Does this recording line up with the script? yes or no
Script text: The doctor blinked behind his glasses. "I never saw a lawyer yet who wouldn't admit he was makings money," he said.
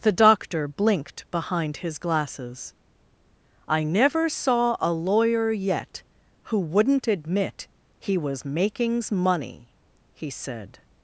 yes